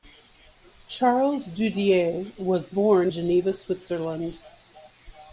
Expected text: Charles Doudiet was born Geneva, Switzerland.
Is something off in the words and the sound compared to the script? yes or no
no